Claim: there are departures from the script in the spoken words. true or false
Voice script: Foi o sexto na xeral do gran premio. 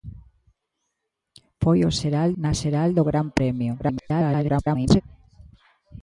true